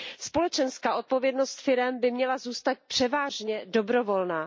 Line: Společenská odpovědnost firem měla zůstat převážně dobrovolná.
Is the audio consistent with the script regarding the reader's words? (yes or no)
no